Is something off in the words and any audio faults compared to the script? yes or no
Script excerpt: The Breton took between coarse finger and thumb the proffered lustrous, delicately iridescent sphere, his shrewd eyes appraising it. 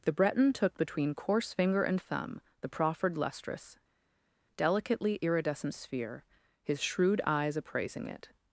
no